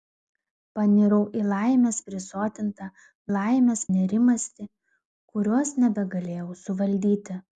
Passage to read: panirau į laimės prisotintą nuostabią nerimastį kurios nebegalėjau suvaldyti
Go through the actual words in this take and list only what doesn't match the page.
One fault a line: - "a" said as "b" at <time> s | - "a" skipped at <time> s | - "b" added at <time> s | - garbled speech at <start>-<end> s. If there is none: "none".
- "nuostabią" said as "laimės" at 3.3 s